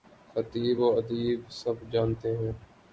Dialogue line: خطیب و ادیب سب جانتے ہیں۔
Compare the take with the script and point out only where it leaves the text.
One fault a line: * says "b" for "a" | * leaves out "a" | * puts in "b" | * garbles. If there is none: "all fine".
all fine